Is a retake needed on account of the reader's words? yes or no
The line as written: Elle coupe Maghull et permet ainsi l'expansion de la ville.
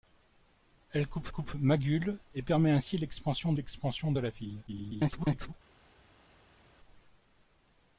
yes